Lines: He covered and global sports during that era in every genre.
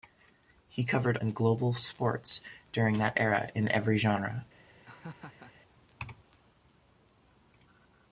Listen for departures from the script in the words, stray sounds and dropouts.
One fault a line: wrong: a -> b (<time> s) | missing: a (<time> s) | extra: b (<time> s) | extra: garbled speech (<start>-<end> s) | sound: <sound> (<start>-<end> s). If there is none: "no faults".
sound: laugh (4.8-5.5 s)